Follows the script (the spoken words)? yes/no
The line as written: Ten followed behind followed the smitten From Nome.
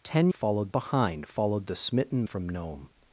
yes